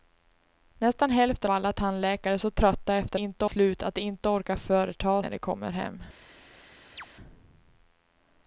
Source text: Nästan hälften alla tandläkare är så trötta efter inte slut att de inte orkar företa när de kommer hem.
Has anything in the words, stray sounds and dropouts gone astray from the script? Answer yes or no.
yes